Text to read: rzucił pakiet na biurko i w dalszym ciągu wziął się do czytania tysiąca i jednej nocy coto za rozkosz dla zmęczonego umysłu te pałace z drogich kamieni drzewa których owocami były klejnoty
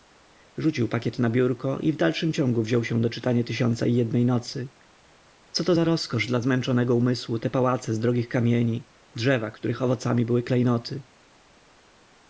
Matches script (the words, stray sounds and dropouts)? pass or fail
pass